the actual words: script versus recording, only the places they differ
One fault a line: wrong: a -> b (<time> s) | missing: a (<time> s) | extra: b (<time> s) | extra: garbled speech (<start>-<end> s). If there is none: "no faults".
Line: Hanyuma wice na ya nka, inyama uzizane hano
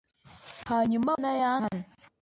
missing: wice (1.1 s)
missing: nka inyama uzizane (1.5 s)